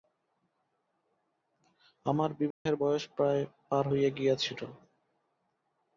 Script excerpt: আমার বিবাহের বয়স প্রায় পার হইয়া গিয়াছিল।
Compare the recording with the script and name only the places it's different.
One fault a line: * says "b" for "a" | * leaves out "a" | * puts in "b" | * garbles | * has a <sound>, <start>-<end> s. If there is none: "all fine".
* has a dropout, 2.5-2.7 s